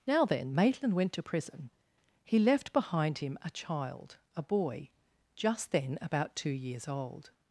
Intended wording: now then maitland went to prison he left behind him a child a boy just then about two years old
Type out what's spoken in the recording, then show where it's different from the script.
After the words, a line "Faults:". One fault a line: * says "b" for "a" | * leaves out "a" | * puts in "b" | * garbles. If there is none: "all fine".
now then maitland went to prison he left behind him a child a boy just then about two years old
Faults:
all fine